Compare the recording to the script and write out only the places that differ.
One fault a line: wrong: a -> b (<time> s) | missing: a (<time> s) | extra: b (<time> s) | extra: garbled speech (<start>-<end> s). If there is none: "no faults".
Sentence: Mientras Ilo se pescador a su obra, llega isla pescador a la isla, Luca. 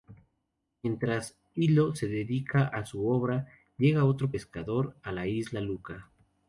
wrong: pescador -> dedica (2.1 s)
wrong: isla -> otro (4.0 s)